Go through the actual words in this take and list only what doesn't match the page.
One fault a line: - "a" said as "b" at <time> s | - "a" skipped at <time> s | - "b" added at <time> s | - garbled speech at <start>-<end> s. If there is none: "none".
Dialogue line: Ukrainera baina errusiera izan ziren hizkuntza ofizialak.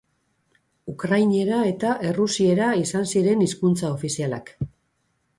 - "baina" said as "eta" at 1.7 s